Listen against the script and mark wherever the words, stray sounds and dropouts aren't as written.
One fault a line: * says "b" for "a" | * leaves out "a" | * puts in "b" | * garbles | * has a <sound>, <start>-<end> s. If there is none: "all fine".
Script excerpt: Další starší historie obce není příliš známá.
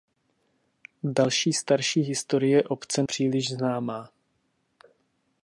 * leaves out "není"